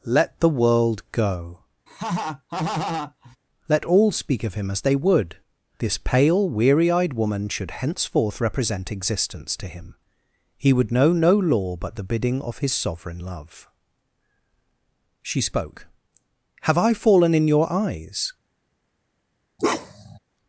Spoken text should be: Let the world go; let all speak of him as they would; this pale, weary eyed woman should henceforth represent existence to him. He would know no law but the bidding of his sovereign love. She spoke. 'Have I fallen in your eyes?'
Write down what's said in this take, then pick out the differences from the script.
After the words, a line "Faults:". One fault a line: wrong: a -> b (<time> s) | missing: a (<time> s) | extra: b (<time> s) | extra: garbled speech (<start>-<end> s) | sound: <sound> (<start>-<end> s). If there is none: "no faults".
Let the world go; let all speak of him as they would; this pale, weary eyed woman should henceforth represent existence to him. He would know no law but the bidding of his sovereign love. She spoke. 'Have I fallen in your eyes?'
Faults:
sound: laugh (1.9-3.4 s)
sound: bark (19.6-20.2 s)